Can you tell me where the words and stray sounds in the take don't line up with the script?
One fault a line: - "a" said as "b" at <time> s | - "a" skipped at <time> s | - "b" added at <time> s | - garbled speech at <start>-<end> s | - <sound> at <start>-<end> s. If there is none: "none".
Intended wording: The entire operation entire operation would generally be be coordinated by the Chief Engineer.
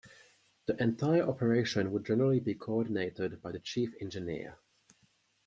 - "entire operation" skipped at 1.9 s
- "be" skipped at 2.5 s